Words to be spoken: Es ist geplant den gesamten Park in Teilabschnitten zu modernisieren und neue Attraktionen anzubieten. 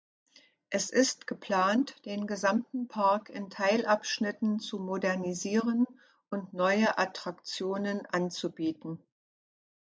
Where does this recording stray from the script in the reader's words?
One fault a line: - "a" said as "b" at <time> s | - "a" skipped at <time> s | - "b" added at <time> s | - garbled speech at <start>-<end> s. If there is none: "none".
none